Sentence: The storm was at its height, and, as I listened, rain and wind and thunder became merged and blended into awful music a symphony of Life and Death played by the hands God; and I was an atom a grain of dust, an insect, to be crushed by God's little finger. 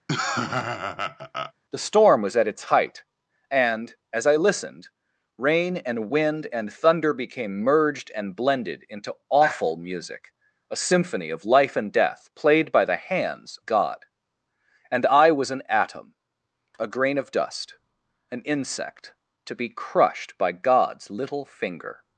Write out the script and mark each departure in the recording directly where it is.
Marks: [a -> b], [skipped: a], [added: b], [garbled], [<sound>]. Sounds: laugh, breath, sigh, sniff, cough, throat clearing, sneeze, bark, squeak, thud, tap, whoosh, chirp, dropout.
[laugh] The storm was at its height, and, as I listened, rain and wind and thunder became merged and blended into awful music a symphony of Life and Death played by the hands God; and I was an atom a grain of dust, an insect, to be crushed by God's little finger.